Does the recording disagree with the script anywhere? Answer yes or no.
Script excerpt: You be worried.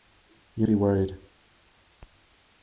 no